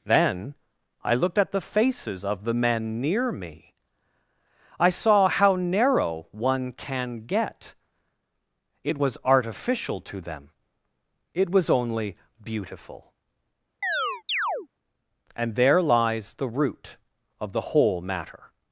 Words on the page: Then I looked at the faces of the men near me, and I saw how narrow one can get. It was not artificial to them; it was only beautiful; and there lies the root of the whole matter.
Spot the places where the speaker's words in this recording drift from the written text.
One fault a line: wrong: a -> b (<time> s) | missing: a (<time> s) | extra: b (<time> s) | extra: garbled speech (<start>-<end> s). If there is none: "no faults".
missing: and (3.7 s)
missing: not (9.2 s)